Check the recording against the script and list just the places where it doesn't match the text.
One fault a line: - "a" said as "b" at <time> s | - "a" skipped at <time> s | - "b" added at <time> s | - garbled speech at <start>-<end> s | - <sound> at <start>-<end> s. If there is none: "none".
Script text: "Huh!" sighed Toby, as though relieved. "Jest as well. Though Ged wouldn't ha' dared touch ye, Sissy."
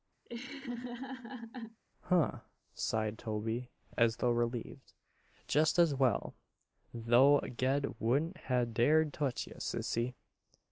- laugh at 0.3-1.8 s